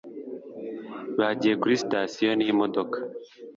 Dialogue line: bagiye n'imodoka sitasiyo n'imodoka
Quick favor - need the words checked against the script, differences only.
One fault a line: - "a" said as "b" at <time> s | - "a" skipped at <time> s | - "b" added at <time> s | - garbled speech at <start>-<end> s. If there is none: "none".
- "n'imodoka" said as "kuri" at 1.6 s